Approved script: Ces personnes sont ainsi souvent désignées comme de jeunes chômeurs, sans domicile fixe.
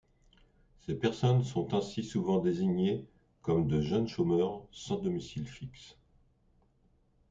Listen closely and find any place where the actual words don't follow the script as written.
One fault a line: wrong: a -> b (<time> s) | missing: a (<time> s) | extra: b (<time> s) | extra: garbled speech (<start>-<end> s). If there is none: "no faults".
no faults